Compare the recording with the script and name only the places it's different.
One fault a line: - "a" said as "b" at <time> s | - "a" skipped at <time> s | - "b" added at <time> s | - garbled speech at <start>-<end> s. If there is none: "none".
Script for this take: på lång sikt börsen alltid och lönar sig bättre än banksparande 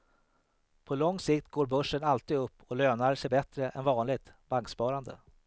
- "går" added at 1.5 s
- "upp" added at 2.4 s
- "vanligt" added at 3.8 s